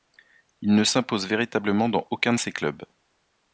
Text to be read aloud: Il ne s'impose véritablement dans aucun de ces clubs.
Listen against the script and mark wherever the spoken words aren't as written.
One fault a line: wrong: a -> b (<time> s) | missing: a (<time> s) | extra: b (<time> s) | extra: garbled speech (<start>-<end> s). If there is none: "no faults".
no faults